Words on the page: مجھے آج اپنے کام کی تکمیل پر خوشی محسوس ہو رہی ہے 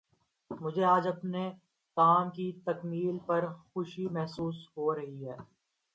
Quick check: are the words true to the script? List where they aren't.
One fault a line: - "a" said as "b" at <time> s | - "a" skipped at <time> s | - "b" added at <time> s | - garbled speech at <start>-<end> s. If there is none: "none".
none